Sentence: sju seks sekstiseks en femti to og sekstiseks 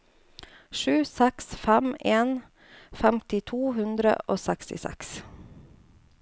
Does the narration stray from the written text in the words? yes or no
yes